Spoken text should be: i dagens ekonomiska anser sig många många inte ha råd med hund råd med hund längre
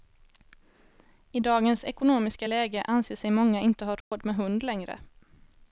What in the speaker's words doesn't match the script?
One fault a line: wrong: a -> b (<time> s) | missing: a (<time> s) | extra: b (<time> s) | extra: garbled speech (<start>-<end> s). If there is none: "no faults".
extra: läge (2.4 s)
missing: många (3.6 s)
missing: råd med hund (4.6 s)